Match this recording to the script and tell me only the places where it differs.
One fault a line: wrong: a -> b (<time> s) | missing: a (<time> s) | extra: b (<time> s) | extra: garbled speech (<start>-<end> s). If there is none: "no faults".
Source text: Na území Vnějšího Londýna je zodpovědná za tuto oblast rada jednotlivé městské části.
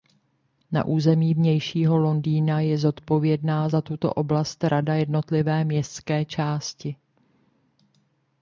no faults